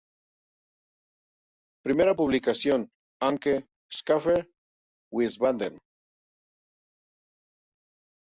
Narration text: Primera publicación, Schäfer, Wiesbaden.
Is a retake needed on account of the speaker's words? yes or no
yes